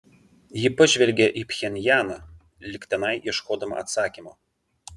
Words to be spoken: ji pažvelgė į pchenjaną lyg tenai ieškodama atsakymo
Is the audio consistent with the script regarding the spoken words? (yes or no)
yes